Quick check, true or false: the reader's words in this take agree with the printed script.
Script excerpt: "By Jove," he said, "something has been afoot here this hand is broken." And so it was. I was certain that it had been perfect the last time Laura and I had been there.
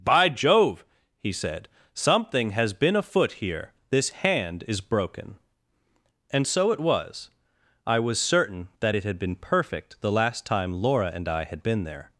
true